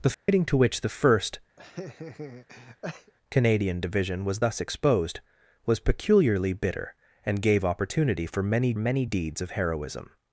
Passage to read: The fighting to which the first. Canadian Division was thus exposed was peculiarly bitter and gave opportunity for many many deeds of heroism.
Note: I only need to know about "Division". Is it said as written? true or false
true